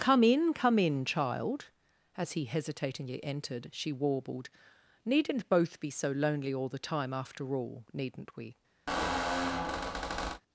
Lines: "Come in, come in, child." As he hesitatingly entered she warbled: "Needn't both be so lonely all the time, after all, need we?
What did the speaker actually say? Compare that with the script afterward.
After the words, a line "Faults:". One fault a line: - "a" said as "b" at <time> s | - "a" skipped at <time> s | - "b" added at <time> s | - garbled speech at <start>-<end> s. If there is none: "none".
"Come in, come in, child." As he hesitatingly entered she warbled: "Needn't both be so lonely all the time, after all, needn't we?
Faults:
- "need" said as "needn't" at 7.9 s